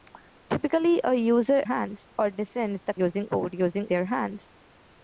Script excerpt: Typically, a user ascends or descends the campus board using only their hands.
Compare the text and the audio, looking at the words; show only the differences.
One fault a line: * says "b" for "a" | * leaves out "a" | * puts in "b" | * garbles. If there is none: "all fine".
* says "hands" for "ascends"
* says "using" for "campus"
* leaves out "only"